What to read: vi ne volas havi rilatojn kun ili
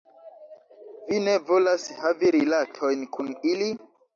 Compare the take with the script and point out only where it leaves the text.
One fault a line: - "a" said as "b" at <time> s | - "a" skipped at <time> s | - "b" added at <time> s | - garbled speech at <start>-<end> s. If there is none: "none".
none